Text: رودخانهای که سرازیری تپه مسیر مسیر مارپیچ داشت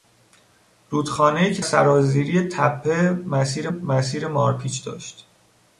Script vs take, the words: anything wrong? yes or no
no